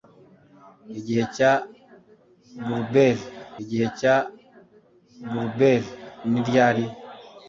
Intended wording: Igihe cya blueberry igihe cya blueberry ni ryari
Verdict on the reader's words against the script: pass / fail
pass